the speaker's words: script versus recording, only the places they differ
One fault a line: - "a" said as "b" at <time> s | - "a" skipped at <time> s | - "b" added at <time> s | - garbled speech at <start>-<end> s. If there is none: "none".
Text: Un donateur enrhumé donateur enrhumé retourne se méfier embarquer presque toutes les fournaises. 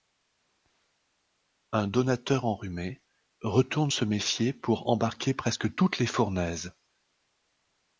- "donateur enrhumé" skipped at 3.0 s
- "pour" added at 4.5 s